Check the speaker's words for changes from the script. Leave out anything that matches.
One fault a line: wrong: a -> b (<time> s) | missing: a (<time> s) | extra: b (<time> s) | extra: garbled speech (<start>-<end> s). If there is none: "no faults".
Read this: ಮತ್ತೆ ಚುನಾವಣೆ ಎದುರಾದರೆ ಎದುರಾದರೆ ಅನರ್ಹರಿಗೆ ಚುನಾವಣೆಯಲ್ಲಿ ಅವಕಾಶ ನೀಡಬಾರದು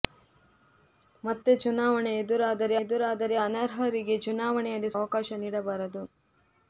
no faults